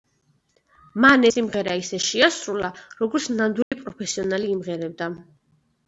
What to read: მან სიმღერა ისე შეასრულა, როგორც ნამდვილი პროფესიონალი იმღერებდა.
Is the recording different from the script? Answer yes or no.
no